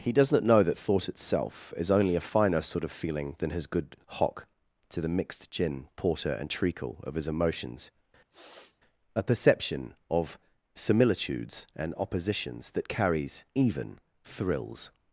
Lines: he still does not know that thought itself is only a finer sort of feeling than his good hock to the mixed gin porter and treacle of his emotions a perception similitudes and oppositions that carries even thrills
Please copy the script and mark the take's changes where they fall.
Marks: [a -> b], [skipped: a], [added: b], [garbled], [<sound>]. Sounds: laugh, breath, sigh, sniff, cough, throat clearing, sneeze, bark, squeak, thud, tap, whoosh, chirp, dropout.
he [skipped: still] does not know that thought itself is only a finer sort of feeling than his good hock to the mixed gin porter and treacle of his emotions [sniff] a perception [added: of] similitudes and oppositions that carries even thrills